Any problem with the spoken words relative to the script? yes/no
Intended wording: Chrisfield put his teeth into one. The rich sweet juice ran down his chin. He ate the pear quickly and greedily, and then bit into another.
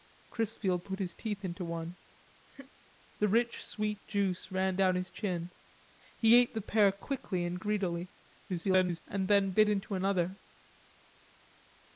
yes